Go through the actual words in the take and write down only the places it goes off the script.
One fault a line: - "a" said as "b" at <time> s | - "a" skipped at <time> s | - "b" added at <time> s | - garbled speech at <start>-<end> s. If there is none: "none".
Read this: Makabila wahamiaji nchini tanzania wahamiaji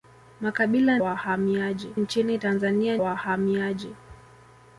none